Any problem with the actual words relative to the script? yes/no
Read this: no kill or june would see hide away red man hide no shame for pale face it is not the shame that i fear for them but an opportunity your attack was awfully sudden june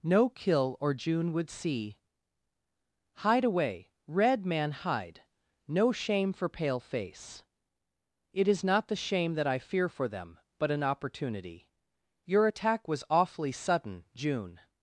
no